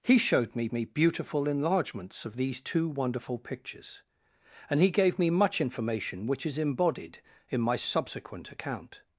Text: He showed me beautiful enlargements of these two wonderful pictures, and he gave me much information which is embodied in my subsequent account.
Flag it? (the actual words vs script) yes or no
yes